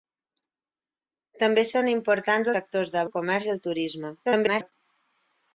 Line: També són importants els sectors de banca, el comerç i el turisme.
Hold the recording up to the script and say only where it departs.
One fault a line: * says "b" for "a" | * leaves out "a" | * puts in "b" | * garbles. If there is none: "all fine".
* leaves out "els"
* leaves out "banca"
* garbles